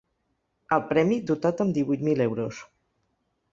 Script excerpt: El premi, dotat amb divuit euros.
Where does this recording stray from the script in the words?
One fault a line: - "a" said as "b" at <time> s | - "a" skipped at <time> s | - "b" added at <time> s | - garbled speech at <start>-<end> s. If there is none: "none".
- "mil" added at 2.1 s